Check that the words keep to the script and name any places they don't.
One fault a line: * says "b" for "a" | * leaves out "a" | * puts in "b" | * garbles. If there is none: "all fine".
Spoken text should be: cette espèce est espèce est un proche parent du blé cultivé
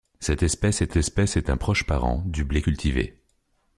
all fine